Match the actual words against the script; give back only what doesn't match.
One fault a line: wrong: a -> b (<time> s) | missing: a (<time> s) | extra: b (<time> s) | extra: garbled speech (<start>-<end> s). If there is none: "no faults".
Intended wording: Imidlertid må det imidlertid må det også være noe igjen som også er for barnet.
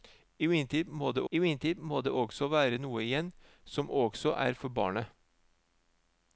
no faults